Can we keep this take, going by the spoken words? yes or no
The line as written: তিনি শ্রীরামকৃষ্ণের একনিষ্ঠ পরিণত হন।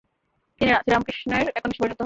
yes